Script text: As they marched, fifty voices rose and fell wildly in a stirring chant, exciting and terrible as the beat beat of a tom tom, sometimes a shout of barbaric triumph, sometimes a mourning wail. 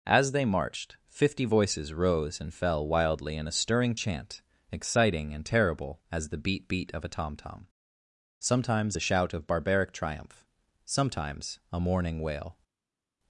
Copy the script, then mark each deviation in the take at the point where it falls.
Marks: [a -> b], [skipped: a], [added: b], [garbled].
As they marched, fifty voices rose and fell wildly in a stirring chant, exciting and terrible as the beat beat of a tom tom, sometimes a shout of barbaric triumph, sometimes a mourning wail.